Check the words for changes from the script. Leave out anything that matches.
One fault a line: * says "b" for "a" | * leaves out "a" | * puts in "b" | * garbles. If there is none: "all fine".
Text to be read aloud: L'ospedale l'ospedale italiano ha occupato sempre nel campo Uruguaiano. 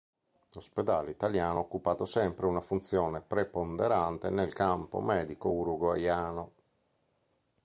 * leaves out "l'ospedale"
* puts in "una funzione preponderante"
* puts in "medico"